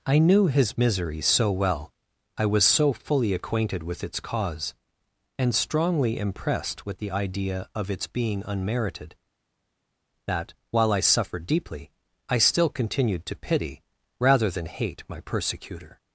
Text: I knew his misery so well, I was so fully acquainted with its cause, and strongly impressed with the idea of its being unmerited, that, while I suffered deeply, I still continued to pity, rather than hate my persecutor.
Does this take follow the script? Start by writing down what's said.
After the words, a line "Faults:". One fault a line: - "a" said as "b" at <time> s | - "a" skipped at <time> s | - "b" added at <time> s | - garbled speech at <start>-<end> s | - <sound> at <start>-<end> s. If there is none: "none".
I knew his misery so well, I was so fully acquainted with its cause, and strongly impressed with the idea of its being unmerited, that, while I suffered deeply, I still continued to pity, rather than hate my persecutor.
Faults:
none